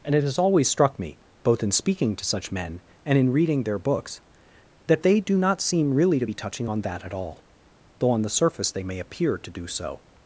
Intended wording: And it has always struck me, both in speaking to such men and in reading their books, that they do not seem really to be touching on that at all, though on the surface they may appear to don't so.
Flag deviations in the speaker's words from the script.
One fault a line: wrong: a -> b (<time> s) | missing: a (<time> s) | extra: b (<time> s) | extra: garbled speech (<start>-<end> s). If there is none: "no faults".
wrong: don't -> do (9.5 s)